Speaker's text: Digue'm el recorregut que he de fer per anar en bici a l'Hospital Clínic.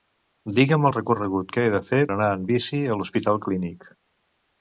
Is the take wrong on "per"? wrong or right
wrong